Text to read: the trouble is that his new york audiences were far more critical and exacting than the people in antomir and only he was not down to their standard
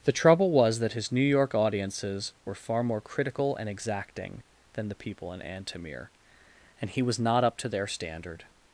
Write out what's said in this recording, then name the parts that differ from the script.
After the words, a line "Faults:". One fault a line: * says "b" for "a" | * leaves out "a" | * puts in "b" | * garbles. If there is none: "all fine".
the trouble was that his new york audiences were far more critical and exacting than the people in antomir and he was not up to their standard
Faults:
* says "was" for "is"
* leaves out "only"
* says "up" for "down"